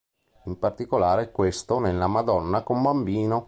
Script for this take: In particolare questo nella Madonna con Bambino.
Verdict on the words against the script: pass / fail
pass